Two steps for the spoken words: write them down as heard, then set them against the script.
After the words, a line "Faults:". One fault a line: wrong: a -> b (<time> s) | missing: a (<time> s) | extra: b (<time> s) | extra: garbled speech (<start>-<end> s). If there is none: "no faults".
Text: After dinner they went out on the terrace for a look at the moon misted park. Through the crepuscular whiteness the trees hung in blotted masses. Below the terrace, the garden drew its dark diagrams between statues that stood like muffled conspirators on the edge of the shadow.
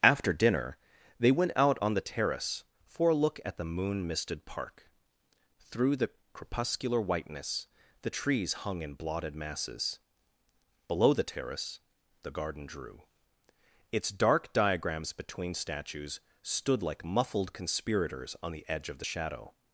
After dinner they went out on the terrace for a look at the moon misted park. Through the crepuscular whiteness the trees hung in blotted masses. Below the terrace, the garden drew its dark diagrams between statues stood like muffled conspirators on the edge of the shadow.
Faults:
missing: that (16.2 s)